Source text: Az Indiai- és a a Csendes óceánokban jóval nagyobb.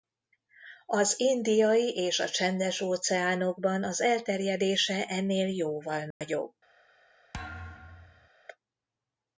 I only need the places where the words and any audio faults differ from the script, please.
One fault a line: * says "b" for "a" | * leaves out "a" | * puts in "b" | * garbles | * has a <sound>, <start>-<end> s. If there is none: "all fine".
* leaves out "a"
* puts in "az elterjedése ennél"
* has a dropout, 6.1-6.2 s
* has a thud, 7.3-8.3 s